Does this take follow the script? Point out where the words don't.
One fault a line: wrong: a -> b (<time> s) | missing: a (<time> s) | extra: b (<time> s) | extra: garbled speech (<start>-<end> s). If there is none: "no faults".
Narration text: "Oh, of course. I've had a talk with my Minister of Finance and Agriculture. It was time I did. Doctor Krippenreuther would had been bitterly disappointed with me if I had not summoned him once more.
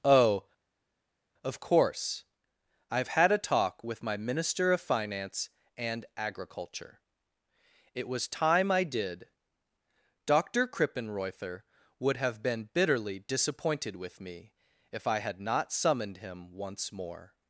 wrong: had -> have (12.2 s)